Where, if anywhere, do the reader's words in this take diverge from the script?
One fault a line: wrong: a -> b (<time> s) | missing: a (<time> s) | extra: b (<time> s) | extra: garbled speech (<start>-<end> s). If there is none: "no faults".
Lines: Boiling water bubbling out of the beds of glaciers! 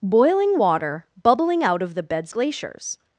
missing: of (2.3 s)